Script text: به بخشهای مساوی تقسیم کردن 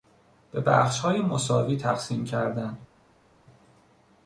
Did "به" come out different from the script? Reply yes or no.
no